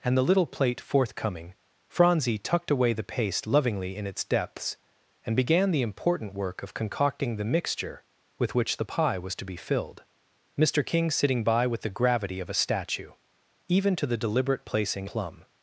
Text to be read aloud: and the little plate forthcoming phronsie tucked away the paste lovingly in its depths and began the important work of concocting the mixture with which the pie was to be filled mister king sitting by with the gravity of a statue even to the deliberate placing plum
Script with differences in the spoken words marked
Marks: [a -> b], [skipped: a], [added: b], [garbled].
and the little plate forthcoming phronsie tucked away the paste lovingly in its depths and began the important work of concocting the mixture with which the pie was to be filled mister king sitting by with the gravity of a statue even to the deliberate placing plum